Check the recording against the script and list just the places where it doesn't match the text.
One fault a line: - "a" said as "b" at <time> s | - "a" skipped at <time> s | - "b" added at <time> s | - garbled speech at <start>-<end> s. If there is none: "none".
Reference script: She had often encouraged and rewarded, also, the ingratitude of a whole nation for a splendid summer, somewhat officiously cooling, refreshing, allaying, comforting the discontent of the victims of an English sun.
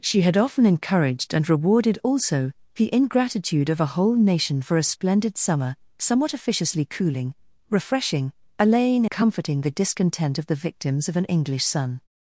none